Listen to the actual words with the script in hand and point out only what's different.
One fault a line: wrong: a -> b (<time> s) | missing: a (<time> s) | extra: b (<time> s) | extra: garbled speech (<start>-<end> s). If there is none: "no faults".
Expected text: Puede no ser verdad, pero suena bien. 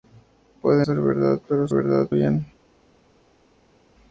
missing: no (0.9 s)
wrong: suena -> verdad (1.7 s)